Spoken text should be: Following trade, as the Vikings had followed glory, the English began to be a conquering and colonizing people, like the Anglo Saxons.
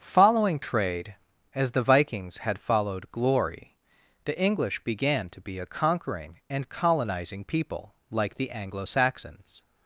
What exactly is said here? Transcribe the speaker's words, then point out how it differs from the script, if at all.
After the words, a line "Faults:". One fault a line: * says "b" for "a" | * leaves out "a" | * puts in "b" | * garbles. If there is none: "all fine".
Following trade, as the Vikings had followed glory, the English began to be a conquering and colonizing people, like the Anglo Saxons.
Faults:
all fine